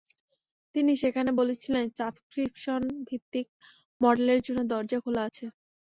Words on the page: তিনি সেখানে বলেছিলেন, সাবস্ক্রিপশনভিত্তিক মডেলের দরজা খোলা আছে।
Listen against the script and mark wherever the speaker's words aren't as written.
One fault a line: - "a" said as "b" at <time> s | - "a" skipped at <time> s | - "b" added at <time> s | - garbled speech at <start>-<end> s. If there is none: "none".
- "জন্য" added at 4.5 s